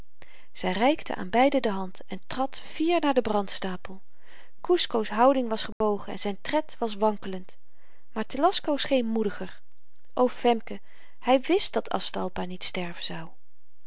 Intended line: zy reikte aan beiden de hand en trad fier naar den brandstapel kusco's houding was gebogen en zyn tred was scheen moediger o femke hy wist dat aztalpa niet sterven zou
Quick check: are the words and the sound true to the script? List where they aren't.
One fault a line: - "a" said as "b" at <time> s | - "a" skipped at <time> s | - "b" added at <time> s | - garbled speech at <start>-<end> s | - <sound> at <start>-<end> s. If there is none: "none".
- dropout at 5.7-5.8 s
- "wankelend maar telasco" added at 6.9 s